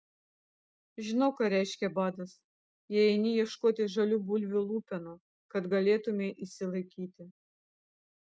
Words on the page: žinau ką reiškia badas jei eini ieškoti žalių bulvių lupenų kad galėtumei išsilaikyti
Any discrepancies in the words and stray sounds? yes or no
no